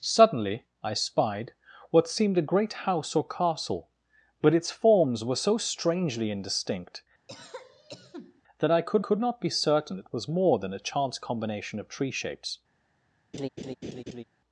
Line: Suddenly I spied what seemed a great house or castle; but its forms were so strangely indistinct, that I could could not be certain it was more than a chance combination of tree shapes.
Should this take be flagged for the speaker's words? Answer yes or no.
no